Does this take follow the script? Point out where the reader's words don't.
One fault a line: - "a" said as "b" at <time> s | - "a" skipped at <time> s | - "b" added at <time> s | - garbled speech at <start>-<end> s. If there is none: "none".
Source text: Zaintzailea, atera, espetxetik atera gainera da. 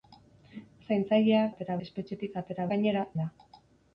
none